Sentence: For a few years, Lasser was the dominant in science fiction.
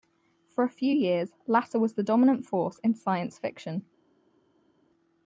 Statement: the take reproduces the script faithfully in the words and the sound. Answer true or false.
false